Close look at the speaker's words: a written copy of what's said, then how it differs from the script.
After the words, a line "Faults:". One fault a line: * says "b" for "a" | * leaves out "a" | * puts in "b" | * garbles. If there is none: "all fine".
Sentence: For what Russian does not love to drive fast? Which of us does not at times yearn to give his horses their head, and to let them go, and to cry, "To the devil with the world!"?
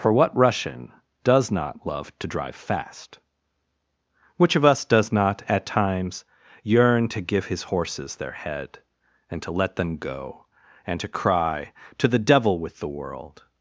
For what Russian does not love to drive fast? Which of us does not at times yearn to give his horses their head, and to let them go, and to cry, "To the devil with the world!"?
Faults:
all fine